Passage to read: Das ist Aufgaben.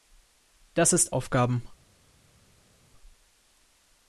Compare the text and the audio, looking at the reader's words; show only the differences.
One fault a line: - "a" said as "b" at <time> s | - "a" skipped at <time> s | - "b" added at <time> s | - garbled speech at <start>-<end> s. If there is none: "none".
none